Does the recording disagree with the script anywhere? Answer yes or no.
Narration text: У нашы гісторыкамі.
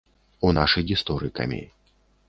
no